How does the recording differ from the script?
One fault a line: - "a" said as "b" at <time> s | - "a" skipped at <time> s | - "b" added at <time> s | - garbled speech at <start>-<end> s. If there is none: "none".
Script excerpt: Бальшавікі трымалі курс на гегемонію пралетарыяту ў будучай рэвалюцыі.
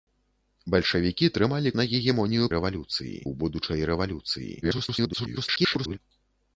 - "курс" skipped at 1.7 s
- "пралетарыяту" said as "рэвалюцыі" at 2.6 s
- garbled speech at 4.6-6.0 s